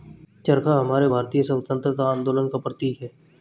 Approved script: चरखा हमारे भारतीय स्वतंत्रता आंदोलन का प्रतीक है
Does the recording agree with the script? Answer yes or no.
yes